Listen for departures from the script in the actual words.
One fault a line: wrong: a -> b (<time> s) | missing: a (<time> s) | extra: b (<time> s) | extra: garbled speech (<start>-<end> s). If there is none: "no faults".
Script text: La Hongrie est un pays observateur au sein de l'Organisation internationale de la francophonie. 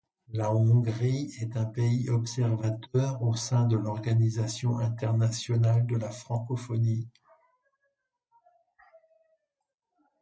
no faults